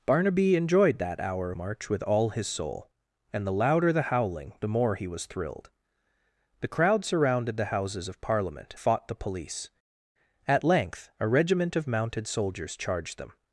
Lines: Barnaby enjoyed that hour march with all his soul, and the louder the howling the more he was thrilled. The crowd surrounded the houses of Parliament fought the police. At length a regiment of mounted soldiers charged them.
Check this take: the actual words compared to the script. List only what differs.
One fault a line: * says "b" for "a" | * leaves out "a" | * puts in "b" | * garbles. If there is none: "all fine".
all fine